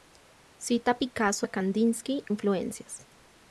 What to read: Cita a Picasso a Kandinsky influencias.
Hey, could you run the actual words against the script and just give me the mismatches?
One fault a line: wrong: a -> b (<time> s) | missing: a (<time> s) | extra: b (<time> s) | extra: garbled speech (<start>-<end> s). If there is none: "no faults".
no faults